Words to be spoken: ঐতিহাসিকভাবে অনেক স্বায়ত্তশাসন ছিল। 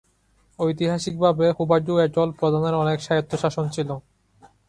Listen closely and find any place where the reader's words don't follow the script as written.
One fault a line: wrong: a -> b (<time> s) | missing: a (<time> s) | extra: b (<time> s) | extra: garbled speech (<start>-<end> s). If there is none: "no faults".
extra: হুভাডু অ্যাটল প্রধানের (1.5 s)